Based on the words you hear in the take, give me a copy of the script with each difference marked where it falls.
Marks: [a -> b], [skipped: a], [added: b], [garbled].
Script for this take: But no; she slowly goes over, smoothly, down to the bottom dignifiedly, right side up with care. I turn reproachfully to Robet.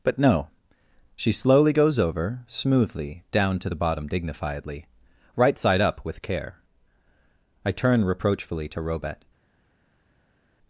But no; she slowly goes over, smoothly, down to the bottom dignifiedly, right side up with care. I turn reproachfully to Robet.